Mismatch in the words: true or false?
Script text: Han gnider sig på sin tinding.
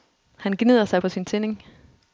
false